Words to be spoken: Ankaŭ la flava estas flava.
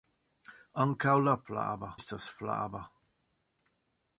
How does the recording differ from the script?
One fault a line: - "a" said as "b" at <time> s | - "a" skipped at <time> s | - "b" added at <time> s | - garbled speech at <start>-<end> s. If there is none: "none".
none